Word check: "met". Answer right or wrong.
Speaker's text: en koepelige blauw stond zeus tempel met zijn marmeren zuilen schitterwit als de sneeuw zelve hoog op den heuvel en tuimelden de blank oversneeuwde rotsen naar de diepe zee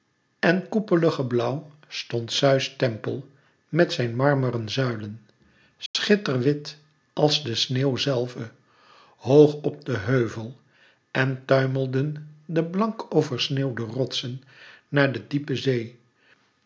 right